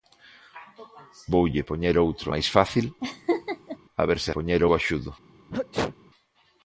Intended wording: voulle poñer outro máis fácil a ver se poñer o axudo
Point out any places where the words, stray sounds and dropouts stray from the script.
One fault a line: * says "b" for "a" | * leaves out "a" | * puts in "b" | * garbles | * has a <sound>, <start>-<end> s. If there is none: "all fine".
* has a laugh, 3.0-3.8 s
* has a sneeze, 5.5-6.0 s